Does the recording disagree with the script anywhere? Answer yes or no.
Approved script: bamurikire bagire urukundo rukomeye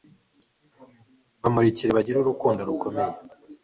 no